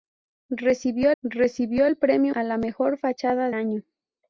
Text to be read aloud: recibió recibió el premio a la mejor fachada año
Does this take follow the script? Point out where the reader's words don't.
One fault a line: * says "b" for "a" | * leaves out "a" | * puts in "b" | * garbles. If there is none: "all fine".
all fine